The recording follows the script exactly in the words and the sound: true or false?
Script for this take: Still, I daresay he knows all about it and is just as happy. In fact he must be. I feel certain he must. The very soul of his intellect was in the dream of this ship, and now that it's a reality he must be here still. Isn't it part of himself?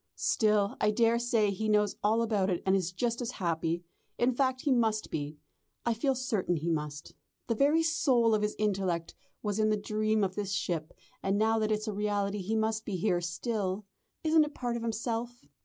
true